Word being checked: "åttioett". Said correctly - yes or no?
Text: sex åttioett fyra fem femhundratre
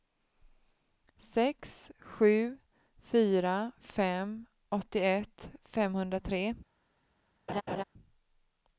no